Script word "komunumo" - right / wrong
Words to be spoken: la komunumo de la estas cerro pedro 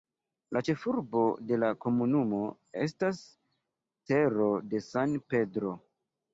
wrong